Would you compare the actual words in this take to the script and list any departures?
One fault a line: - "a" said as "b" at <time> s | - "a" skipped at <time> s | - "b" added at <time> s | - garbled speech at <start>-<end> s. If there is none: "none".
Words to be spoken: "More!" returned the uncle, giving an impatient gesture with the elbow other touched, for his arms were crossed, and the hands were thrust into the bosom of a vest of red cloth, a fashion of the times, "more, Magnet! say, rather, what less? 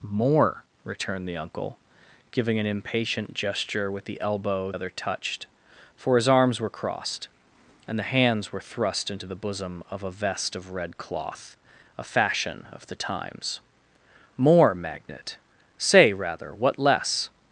none